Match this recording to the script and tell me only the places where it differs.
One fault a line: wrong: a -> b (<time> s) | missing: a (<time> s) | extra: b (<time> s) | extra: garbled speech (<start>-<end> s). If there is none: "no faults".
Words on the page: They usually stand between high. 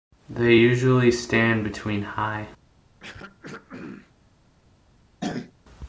no faults